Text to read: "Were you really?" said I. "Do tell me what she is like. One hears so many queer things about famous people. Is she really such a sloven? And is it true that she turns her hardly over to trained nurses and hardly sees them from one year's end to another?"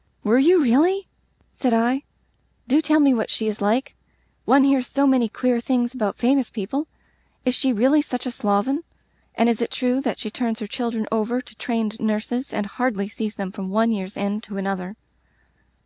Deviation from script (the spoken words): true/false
true